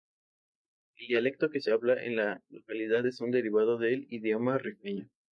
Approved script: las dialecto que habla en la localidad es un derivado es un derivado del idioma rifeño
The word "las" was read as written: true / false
false